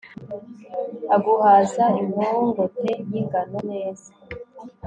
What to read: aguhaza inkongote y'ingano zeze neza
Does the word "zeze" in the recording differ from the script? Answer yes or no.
yes